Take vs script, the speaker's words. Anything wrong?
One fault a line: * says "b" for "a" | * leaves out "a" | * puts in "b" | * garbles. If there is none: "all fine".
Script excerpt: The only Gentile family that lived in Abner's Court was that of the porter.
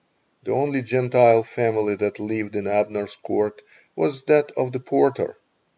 all fine